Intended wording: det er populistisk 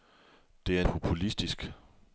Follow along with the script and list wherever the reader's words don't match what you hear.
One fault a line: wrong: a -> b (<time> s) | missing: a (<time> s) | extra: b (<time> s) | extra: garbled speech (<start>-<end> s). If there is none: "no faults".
no faults